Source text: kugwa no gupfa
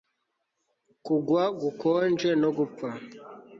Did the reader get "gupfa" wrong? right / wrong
right